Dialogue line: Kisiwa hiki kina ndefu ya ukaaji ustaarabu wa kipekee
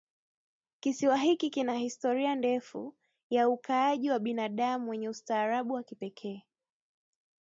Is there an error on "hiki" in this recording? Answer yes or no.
no